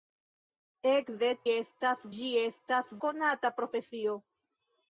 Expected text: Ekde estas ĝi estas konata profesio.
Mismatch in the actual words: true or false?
false